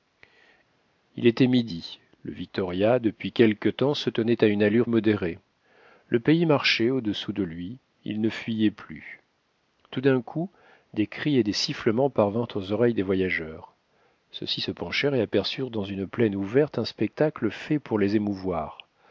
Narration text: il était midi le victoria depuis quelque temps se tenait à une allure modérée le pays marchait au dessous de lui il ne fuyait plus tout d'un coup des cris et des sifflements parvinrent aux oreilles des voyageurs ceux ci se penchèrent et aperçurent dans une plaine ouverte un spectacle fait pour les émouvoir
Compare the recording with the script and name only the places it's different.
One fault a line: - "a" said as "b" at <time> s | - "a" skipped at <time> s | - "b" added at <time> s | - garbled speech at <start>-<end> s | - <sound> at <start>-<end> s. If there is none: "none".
none